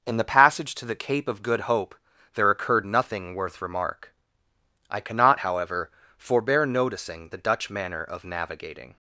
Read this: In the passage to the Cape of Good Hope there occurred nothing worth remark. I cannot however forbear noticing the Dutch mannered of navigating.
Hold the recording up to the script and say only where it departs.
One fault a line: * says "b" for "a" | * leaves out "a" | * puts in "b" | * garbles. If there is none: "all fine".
* says "manner" for "mannered"